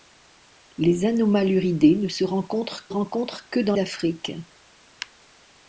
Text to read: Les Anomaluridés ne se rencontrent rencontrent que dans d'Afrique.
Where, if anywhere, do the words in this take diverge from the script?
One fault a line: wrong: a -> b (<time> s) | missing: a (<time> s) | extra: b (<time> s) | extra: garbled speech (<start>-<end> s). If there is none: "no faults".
no faults